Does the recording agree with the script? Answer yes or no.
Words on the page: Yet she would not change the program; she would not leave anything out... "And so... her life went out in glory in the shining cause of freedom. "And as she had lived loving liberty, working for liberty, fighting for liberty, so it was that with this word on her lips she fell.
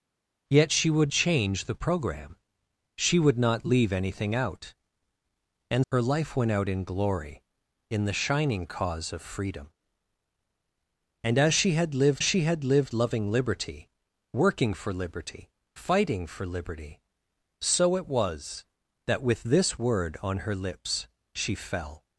no